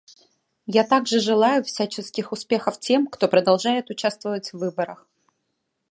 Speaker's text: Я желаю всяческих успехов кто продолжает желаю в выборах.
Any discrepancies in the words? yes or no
yes